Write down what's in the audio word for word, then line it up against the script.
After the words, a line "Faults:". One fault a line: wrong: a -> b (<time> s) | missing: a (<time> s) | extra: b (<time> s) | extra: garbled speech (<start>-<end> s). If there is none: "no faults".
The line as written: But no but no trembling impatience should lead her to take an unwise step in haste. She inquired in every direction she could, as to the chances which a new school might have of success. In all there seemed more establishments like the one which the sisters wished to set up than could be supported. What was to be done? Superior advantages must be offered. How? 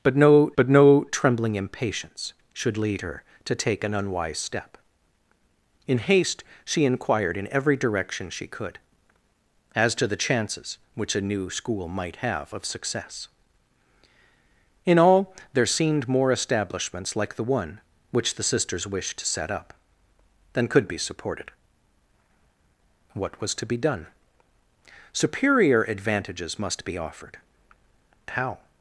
But no but no trembling impatience should lead her to take an unwise step in haste. She inquired in every direction she could, as to the chances which a new school might have of success. In all there seemed more establishments like the one which the sisters wished to set up than could be supported. What was to be done? Superior advantages must be offered. How?
Faults:
no faults